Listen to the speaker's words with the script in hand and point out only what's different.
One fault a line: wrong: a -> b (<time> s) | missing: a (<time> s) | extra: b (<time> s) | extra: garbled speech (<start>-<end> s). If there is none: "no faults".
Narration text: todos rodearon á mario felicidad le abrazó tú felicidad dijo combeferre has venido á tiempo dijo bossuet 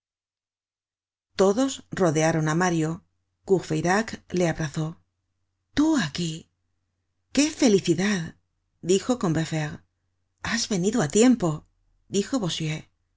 wrong: felicidad -> courfeyrac (3.5 s)
extra: aquí qué (6.1 s)